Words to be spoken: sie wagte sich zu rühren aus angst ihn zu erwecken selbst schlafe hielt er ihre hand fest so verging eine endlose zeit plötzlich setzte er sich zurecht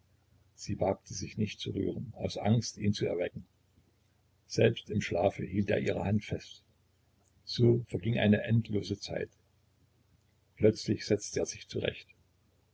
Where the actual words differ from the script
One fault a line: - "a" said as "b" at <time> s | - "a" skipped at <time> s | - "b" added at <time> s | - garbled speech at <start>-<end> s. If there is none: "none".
- "nicht" added at 1.4 s
- "im" added at 4.9 s